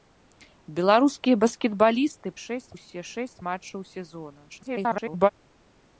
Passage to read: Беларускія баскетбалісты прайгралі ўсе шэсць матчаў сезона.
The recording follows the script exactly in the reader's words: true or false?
false